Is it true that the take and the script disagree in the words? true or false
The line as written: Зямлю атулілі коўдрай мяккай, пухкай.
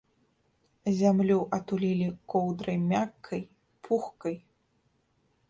false